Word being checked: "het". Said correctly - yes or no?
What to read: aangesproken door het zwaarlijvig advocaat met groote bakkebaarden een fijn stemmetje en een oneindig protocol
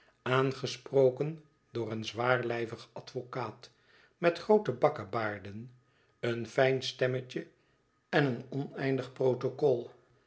no